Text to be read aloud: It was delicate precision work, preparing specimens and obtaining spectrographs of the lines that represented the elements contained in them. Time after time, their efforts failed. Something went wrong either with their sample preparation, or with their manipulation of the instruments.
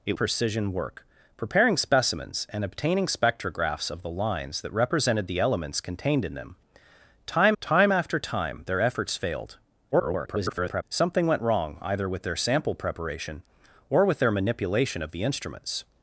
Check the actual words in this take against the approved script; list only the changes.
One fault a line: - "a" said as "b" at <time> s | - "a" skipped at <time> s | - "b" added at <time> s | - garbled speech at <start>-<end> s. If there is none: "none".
- "was delicate" skipped at 0.2 s
- "time" added at 7.6 s
- garbled speech at 9.9-10.8 s